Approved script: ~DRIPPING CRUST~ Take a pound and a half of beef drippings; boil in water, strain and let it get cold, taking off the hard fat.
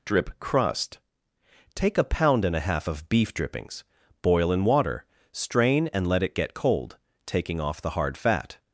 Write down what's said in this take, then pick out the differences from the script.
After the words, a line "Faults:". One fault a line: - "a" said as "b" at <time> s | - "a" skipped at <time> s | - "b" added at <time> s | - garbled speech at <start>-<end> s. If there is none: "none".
~Drip CRUST~ Take a pound and a half of beef drippings; boil in water, strain and let it get cold, taking off the hard fat.
Faults:
- "DRIPPING" said as "Drip" at 0.1 s